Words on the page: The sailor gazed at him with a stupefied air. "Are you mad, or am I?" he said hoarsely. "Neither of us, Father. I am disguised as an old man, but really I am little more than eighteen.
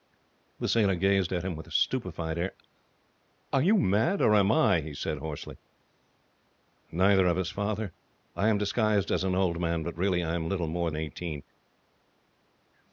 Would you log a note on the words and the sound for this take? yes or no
yes